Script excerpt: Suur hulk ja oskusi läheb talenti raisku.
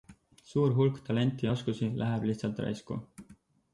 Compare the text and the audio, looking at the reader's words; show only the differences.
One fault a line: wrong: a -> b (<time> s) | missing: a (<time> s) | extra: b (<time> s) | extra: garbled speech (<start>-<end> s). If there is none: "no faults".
extra: talenti (1.1 s)
wrong: talenti -> lihtsalt (2.3 s)